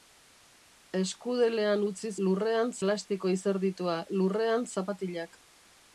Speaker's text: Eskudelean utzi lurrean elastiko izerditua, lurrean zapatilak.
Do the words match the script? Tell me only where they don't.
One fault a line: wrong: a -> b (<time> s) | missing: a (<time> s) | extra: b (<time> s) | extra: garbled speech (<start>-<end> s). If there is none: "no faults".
no faults